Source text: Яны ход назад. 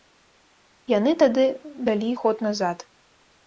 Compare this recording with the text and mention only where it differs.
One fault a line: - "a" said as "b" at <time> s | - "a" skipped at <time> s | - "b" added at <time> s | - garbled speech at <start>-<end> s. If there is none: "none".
- "тады далі" added at 1.2 s